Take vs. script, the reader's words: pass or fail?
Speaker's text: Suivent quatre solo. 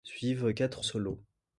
pass